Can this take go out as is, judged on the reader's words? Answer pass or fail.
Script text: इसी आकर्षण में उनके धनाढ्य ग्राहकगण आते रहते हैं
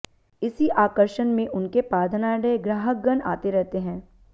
fail